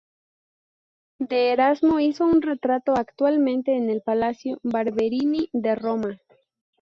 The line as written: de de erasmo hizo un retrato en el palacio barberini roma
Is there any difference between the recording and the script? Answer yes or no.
yes